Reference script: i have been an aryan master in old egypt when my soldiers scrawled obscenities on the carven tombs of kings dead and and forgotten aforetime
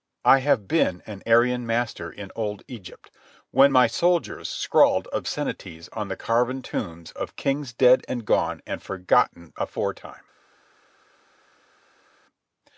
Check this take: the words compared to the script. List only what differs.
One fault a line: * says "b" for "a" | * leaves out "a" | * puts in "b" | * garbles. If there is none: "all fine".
* puts in "gone"